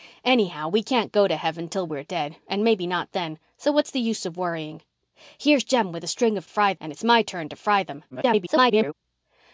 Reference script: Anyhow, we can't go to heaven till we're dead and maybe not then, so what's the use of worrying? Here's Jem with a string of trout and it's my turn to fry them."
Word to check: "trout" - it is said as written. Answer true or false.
false